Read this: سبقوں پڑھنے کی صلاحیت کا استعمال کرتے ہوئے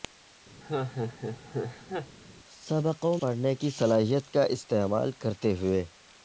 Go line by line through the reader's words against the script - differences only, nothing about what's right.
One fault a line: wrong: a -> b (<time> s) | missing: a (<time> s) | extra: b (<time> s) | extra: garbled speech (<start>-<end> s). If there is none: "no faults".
no faults